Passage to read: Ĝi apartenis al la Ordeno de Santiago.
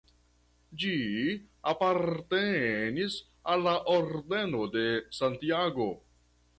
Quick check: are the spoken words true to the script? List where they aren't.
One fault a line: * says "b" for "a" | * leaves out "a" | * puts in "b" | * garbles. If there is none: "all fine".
all fine